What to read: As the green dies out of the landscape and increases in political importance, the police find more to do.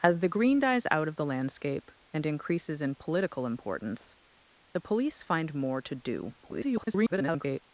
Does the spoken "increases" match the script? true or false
true